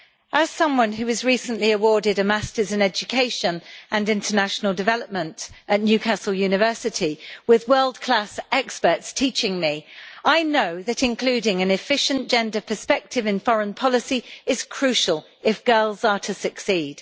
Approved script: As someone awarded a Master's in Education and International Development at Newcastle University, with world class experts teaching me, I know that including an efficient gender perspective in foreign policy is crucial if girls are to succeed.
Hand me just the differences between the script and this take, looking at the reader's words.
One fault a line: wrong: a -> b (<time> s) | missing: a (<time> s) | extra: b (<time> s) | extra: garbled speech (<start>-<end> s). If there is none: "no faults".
extra: who was recently (0.9 s)